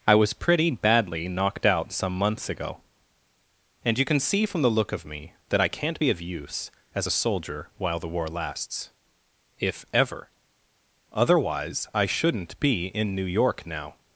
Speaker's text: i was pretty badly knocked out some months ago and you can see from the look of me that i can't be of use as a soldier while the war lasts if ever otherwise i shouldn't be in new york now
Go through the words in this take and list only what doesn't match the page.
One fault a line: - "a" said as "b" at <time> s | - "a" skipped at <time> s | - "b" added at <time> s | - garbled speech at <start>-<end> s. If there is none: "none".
none